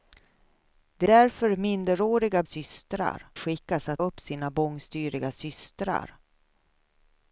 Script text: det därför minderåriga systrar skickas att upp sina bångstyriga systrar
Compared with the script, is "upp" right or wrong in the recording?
right